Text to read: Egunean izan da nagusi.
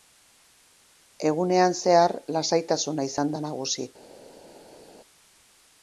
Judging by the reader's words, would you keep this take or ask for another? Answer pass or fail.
fail